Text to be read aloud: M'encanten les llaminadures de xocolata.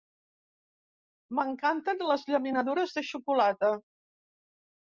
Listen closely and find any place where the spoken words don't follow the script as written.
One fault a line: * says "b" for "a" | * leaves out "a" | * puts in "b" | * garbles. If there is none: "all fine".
all fine